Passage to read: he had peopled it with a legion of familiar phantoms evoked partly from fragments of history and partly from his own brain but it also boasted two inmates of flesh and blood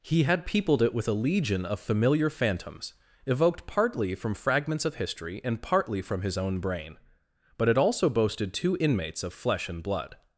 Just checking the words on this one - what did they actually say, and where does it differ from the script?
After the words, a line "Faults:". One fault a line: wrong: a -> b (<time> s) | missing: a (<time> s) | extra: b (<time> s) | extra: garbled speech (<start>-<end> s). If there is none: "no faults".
he had peopled it with a legion of familiar phantoms evoked partly from fragments of history and partly from his own brain but it also boasted two inmates of flesh and blood
Faults:
no faults